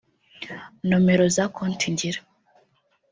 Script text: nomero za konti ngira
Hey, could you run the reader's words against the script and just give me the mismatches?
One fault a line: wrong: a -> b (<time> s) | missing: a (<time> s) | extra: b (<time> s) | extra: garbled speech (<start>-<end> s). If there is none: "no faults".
no faults